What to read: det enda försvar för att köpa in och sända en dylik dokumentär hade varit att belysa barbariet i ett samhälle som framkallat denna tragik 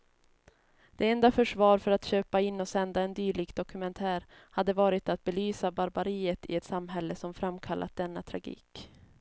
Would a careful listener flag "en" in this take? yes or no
no